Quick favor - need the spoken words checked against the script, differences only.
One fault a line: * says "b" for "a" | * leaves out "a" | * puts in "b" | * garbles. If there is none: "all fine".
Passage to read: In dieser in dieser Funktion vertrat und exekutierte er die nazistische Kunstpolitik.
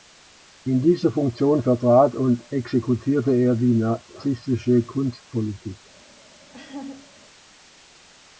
* leaves out "in dieser"